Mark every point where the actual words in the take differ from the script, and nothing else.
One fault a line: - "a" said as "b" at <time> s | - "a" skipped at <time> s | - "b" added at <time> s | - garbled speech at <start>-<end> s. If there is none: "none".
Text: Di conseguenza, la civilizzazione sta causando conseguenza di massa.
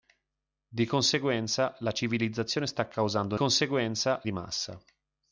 none